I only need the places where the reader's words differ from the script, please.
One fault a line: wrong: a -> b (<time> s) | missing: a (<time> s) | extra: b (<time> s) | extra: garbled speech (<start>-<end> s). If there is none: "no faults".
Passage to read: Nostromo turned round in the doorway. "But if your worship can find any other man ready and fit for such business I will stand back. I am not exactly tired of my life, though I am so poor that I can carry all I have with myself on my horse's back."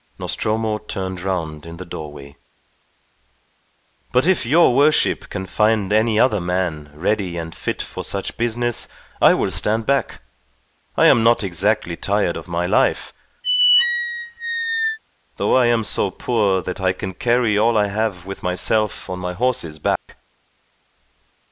no faults